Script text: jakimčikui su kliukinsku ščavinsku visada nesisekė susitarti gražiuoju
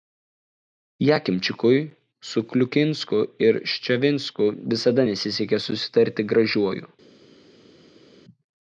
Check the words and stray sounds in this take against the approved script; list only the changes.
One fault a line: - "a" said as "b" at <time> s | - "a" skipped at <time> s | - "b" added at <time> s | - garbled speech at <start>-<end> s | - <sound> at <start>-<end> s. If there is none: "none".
- "ir" added at 3.5 s